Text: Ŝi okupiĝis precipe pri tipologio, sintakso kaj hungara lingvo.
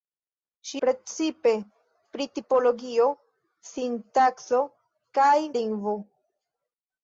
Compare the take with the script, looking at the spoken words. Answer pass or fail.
fail